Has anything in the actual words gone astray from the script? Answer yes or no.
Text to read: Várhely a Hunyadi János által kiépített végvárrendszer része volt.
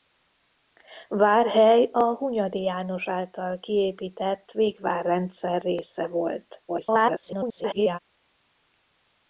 yes